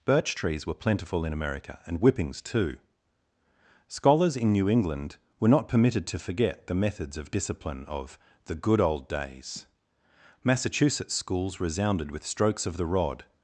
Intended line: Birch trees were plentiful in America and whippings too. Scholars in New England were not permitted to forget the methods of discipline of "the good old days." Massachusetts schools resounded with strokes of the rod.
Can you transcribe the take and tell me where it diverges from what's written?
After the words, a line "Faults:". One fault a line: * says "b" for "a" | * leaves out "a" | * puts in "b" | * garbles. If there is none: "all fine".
Birch trees were plentiful in America and whippings too. Scholars in New England were not permitted to forget the methods of discipline of "the good old days." Massachusetts schools resounded with strokes of the rod.
Faults:
all fine